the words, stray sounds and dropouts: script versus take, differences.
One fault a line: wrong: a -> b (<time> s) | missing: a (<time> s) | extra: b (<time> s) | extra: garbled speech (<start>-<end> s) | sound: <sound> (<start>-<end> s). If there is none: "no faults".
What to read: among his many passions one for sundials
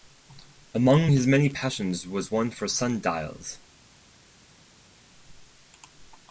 extra: was (2.1 s)